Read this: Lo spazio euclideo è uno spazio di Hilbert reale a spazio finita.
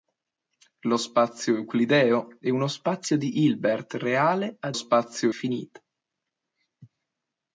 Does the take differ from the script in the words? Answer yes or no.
no